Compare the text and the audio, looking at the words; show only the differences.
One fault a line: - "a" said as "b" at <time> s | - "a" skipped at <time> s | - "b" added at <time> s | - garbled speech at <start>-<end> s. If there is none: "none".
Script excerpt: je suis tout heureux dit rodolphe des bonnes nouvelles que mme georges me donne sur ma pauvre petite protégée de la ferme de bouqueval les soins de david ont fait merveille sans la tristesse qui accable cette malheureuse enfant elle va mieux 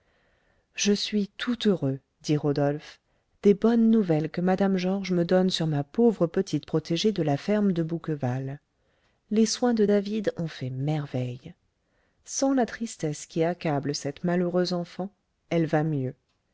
none